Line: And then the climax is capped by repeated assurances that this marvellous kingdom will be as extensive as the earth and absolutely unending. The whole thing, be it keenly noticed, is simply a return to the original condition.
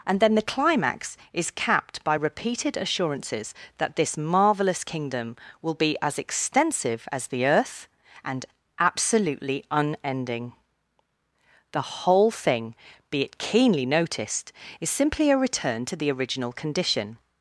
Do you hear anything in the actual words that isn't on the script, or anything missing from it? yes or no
no